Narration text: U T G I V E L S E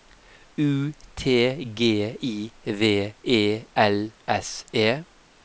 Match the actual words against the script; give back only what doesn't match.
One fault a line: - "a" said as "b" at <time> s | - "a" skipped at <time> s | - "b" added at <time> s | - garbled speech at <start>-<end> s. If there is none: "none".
none